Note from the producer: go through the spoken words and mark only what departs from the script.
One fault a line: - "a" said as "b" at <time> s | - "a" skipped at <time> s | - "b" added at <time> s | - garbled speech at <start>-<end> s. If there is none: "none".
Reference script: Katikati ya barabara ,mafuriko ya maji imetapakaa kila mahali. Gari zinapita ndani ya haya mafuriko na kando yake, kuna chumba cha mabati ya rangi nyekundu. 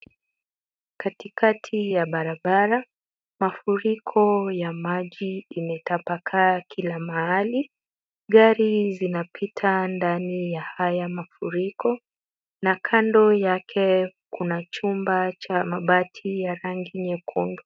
none